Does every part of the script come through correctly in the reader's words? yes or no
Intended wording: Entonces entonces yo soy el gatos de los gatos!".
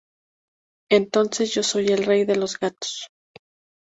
no